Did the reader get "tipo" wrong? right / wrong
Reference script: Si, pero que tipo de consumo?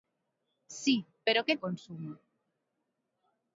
wrong